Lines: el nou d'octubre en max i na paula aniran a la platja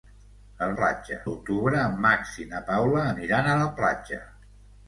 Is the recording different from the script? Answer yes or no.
yes